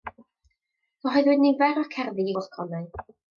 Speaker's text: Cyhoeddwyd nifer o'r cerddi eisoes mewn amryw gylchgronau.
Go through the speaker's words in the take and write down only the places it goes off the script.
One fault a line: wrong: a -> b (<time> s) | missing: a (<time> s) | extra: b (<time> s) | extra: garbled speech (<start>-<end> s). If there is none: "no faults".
missing: eisoes mewn amryw (2.3 s)